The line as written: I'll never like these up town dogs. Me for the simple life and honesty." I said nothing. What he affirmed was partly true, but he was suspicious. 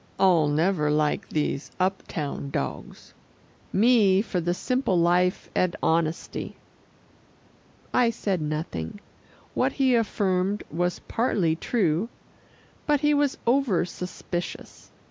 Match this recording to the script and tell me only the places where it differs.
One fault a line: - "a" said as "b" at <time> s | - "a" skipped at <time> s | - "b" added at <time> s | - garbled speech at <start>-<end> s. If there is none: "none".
- "over" added at 13.5 s